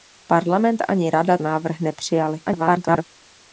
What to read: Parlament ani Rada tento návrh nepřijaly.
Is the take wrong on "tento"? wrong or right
wrong